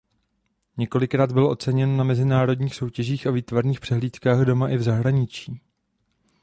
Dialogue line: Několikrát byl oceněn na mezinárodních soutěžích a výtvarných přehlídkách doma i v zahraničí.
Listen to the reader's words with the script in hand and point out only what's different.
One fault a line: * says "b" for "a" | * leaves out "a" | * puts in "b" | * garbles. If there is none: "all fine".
all fine